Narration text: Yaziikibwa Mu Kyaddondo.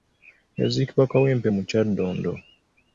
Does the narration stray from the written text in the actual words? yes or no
yes